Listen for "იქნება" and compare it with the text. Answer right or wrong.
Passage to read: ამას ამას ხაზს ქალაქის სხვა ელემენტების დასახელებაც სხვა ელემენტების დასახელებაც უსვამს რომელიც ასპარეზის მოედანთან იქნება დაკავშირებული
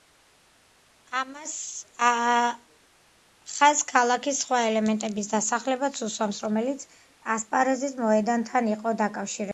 wrong